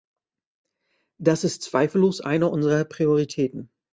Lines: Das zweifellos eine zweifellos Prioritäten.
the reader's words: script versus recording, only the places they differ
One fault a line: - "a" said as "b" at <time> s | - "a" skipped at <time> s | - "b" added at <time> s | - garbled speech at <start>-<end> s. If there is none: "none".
- "ist" added at 1.4 s
- "zweifellos" said as "unserer" at 2.5 s